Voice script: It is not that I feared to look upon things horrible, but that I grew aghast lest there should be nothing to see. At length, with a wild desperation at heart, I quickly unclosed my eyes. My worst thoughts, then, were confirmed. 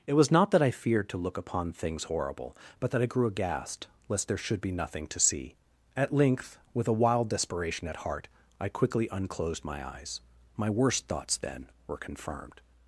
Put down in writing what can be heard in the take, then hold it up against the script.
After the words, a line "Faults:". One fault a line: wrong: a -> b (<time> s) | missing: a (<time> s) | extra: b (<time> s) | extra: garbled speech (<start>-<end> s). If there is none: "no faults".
It was not that I feared to look upon things horrible, but that I grew aghast lest there should be nothing to see. At length, with a wild desperation at heart, I quickly unclosed my eyes. My worst thoughts, then, were confirmed.
Faults:
wrong: is -> was (0.1 s)